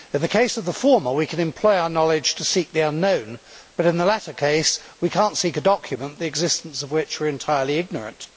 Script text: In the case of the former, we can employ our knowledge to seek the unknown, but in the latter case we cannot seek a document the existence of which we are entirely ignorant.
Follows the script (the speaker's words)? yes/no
yes